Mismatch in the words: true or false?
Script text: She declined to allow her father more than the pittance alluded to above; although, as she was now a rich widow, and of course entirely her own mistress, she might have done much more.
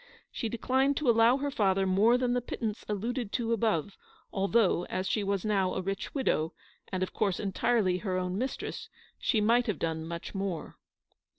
false